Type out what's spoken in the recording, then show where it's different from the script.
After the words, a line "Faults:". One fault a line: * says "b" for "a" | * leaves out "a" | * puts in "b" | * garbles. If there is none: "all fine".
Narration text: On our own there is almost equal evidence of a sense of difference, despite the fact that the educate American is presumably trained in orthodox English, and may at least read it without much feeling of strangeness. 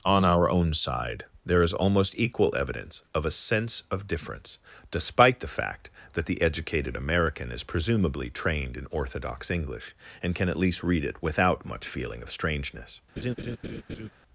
On our own side there is almost equal evidence of a sense of difference, despite the fact that the educated American is presumably trained in orthodox English, and can at least read it without much feeling of strangeness.
Faults:
* puts in "side"
* says "educated" for "educate"
* says "can" for "may"